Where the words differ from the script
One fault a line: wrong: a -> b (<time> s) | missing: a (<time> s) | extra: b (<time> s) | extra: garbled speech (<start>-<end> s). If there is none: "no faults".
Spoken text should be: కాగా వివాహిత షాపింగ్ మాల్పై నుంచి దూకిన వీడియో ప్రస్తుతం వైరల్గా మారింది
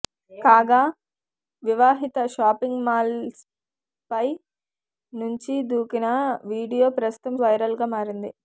no faults